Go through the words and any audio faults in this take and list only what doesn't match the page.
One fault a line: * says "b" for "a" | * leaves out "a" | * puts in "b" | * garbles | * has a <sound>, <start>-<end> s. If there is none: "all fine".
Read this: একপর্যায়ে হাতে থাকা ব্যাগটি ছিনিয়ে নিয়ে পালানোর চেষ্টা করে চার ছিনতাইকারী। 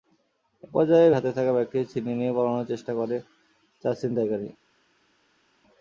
all fine